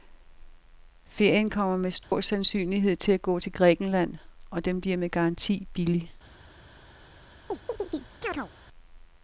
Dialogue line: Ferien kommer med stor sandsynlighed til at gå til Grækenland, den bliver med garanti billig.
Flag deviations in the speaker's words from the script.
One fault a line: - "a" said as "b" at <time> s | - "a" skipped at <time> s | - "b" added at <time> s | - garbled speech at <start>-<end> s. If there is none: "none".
- "og" added at 4.5 s